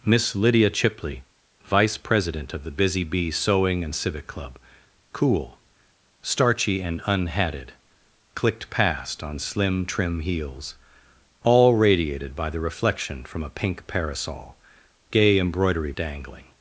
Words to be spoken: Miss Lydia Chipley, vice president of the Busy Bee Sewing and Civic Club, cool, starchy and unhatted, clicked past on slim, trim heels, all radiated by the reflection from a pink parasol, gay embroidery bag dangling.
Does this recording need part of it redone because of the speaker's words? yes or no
yes